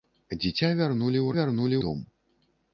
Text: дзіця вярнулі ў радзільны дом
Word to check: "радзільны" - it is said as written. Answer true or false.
false